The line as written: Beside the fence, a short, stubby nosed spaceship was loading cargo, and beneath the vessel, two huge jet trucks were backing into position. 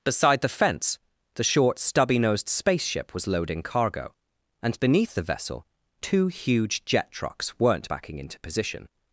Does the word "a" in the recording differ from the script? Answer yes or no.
yes